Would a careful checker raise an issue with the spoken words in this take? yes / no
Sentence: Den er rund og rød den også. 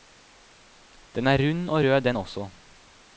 no